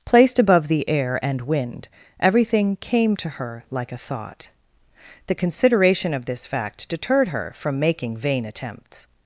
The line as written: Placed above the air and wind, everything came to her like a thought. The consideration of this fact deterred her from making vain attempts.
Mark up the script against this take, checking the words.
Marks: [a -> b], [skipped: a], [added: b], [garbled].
Placed above the air and wind, everything came to her like a thought. The consideration of this fact deterred her from making vain attempts.